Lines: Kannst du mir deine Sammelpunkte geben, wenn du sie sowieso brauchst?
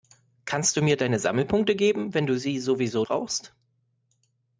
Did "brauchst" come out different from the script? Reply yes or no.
no